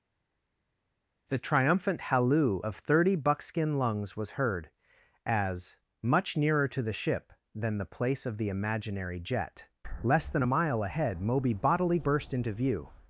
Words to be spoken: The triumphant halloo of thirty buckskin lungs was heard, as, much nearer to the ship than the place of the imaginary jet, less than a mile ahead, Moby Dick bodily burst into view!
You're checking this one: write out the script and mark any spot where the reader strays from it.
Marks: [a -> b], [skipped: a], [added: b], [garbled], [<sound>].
The triumphant halloo of thirty buckskin lungs was heard, as, much nearer to the ship than the place of the imaginary jet, less than a mile ahead, Moby [skipped: Dick] bodily burst into view!